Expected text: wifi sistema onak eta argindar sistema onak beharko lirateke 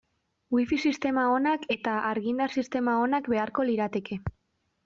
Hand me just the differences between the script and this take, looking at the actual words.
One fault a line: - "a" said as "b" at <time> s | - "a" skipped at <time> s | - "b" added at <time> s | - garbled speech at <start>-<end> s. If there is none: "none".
none